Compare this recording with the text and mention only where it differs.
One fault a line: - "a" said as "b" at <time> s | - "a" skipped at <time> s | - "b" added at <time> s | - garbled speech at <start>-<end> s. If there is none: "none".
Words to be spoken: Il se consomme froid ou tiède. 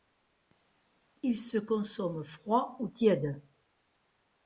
none